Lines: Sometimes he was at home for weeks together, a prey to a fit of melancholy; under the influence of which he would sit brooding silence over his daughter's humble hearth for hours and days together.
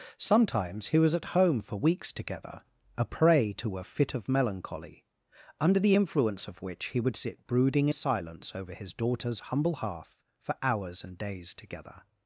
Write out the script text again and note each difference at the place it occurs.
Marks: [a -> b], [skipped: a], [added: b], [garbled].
Sometimes he was at home for weeks together, a prey to a fit of melancholy; under the influence of which he would sit brooding silence over his daughter's humble hearth for hours and days together.